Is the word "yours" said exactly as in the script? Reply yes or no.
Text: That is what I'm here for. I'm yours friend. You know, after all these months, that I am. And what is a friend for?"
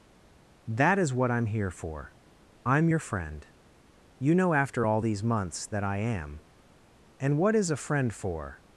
no